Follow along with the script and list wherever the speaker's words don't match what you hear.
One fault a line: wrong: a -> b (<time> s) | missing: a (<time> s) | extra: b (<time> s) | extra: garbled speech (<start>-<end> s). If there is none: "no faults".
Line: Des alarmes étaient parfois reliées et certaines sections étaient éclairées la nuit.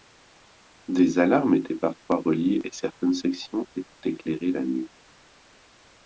no faults